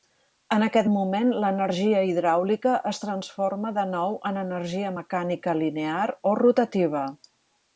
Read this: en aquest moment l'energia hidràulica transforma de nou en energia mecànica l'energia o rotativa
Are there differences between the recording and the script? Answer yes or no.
yes